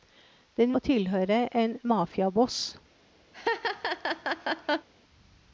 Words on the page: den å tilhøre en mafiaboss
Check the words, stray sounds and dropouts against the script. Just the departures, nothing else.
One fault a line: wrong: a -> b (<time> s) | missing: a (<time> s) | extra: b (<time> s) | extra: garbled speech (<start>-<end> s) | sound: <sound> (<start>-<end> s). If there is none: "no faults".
sound: laugh (3.3-4.9 s)